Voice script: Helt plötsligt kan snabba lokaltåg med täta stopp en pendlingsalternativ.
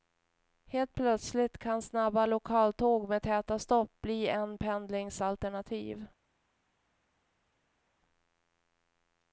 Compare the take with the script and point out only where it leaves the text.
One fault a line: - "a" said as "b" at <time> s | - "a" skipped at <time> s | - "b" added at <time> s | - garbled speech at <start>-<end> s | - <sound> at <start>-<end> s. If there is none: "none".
- "bli" added at 4.0 s